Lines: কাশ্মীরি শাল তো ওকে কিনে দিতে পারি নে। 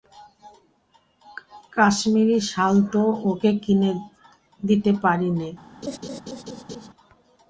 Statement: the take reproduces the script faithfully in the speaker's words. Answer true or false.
true